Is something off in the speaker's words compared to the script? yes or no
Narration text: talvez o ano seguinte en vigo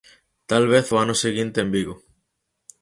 no